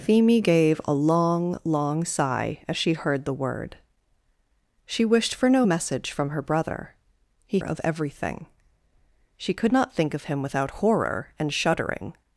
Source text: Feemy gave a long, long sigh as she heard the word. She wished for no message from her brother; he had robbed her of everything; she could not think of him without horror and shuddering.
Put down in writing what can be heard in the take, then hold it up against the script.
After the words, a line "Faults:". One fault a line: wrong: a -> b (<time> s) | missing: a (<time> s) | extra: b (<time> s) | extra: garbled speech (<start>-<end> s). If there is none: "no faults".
Feemy gave a long, long sigh as she heard the word. She wished for no message from her brother; he of everything; she could not think of him without horror and shuddering.
Faults:
missing: had robbed her (7.6 s)